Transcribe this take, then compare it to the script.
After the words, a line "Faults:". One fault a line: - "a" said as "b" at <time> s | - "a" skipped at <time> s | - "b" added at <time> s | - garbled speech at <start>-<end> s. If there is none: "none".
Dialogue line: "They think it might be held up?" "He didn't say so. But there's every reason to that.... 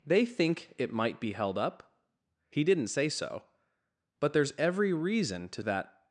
"They think it might be held up?" "He didn't say so. But there's every reason to that....
Faults:
none